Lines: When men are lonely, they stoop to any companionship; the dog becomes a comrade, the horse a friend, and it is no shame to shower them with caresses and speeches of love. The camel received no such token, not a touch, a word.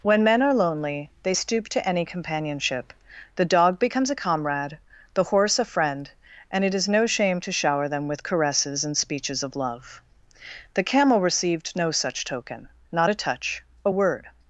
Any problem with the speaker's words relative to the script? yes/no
no